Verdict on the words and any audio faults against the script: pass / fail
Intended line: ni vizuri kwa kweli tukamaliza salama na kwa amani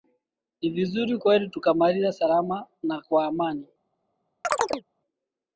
fail